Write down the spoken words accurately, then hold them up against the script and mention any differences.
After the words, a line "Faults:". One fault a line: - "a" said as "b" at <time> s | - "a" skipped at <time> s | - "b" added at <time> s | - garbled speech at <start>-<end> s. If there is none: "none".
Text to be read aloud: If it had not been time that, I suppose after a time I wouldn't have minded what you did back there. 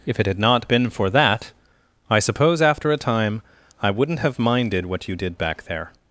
If it had not been for that, I suppose after a time I wouldn't have minded what you did back there.
Faults:
- "time" said as "for" at 0.9 s